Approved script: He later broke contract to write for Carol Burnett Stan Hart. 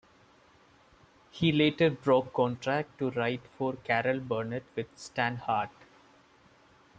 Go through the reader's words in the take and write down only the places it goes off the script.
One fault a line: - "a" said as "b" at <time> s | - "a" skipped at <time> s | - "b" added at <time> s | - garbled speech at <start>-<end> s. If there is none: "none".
- "with" added at 4.8 s